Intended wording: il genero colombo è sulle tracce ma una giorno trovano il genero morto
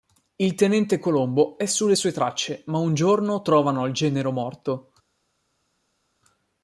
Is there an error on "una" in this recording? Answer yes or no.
yes